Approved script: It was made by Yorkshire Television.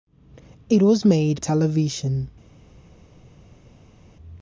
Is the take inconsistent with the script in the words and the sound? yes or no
yes